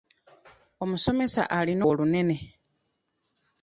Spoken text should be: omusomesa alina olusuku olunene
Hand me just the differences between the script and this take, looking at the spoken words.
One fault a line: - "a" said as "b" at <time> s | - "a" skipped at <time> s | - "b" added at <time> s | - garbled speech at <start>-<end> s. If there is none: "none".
- "olusuku" skipped at 1.8 s